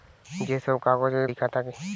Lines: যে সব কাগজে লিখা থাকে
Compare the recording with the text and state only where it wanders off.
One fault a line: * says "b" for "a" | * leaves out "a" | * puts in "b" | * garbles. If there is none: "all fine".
all fine